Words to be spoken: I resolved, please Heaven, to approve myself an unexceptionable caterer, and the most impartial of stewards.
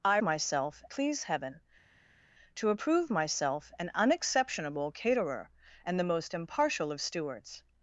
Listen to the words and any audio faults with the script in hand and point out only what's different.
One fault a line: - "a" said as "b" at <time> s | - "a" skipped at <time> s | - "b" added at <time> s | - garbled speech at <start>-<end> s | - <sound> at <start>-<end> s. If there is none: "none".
- "resolved" said as "myself" at 0.2 s